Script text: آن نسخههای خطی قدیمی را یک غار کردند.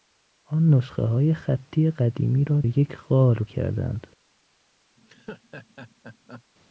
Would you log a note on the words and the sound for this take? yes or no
yes